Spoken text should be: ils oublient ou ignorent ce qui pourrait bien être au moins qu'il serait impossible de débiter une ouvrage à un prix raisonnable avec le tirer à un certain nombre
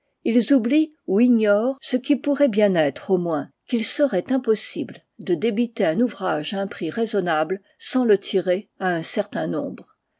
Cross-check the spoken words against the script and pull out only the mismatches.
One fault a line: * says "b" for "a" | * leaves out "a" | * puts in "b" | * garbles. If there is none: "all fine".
* says "un" for "une"
* says "sans" for "avec"